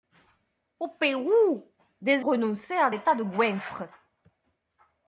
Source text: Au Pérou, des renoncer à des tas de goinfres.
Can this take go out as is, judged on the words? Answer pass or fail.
pass